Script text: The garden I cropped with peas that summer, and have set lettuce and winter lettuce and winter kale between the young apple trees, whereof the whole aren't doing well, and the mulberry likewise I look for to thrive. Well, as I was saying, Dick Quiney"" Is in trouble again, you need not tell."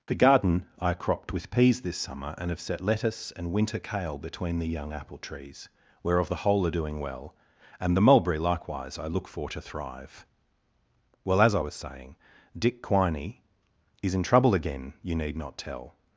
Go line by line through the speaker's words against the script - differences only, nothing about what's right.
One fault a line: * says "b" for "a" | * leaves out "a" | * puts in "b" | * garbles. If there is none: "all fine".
* says "this" for "that"
* leaves out "lettuce and winter"
* says "are" for "aren't"